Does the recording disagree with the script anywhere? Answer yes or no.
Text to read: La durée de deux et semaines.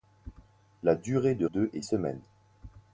no